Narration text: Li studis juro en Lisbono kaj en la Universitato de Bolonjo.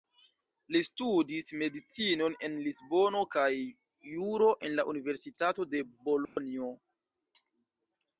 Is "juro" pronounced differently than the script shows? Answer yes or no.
yes